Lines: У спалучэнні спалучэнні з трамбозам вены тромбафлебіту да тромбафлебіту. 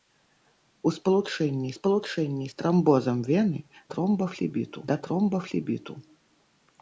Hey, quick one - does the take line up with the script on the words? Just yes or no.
yes